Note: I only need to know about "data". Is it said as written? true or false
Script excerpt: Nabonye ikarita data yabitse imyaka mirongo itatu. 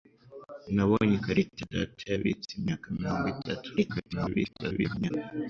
true